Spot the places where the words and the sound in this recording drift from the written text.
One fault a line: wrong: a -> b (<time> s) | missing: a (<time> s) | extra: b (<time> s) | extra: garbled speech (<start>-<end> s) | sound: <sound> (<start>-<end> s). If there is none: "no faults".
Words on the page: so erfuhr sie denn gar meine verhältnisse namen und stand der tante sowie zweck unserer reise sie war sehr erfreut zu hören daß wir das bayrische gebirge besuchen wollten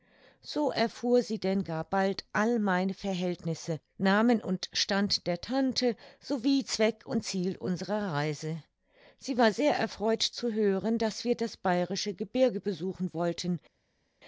extra: bald all (1.8 s)
extra: und ziel (7.1 s)